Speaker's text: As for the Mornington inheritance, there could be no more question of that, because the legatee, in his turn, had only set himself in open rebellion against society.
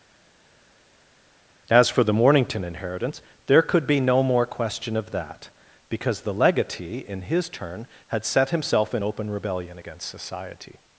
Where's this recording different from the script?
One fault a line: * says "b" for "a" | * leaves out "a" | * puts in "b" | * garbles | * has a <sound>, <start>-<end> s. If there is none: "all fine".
* leaves out "only"